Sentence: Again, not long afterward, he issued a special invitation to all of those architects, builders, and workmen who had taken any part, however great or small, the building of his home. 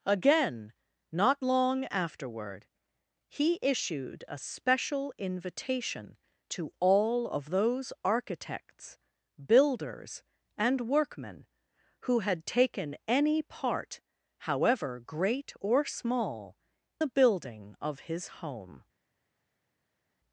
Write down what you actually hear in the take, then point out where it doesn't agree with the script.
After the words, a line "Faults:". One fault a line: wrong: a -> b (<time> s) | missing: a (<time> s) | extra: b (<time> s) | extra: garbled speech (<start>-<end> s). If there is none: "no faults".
Again, not long afterward, he issued a special invitation to all of those architects, builders, and workmen who had taken any part, however great or small, the building of his home.
Faults:
no faults